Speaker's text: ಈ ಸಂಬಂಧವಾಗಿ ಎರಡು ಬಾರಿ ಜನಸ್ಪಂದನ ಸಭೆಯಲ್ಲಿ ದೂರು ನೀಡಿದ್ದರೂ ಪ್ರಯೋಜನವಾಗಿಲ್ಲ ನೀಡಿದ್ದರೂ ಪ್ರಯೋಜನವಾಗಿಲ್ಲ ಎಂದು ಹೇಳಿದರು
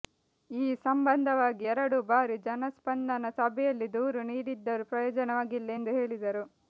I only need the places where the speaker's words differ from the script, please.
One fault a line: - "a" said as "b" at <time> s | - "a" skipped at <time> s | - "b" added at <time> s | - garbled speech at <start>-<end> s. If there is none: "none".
- "ನೀಡಿದ್ದರೂ ಪ್ರಯೋಜನವಾಗಿಲ್ಲ" skipped at 5.7 s